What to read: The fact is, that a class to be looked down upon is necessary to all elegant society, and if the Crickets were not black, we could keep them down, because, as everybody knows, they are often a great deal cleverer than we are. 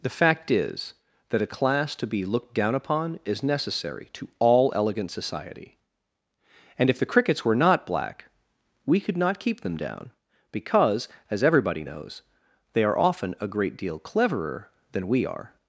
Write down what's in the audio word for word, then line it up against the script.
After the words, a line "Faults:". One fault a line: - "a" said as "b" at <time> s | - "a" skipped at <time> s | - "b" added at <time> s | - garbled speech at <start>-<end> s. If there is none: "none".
The fact is, that a class to be looked down upon is necessary to all elegant society, and if the Crickets were not black, we could not keep them down, because, as everybody knows, they are often a great deal cleverer than we are.
Faults:
- "not" added at 9.2 s